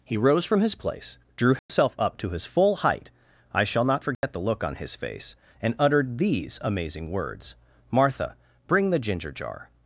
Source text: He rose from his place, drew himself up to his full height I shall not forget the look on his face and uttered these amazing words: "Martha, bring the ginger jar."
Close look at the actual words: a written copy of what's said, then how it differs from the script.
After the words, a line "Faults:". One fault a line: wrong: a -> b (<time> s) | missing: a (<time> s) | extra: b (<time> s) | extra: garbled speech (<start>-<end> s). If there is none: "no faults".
He rose from his place, drew himself up to his full height I shall not forget the look on his face and uttered these amazing words: "Martha, bring the ginger jar."
Faults:
no faults